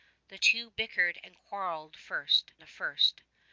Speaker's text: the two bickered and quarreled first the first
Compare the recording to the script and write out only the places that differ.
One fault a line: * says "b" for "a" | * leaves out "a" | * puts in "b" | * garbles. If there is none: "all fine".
all fine